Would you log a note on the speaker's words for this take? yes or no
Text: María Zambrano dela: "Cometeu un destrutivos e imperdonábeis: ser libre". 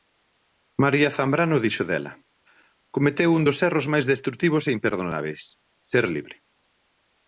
yes